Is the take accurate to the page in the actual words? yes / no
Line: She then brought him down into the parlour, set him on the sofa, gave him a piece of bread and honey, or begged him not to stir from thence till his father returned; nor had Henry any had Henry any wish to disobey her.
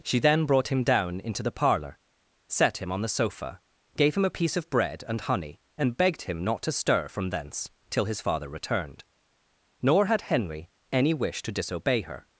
no